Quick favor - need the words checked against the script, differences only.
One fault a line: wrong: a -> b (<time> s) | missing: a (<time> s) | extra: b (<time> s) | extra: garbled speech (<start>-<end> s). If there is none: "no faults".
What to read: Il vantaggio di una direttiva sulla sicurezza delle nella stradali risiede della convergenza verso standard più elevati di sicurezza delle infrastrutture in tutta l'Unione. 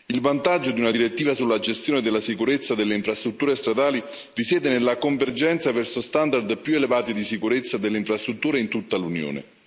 extra: gestione della (1.6 s)
wrong: nella -> infrastrutture (2.9 s)
wrong: della -> nella (4.7 s)